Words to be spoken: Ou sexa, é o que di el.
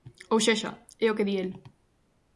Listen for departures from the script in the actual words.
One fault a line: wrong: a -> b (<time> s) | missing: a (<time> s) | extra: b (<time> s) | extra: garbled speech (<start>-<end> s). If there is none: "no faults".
no faults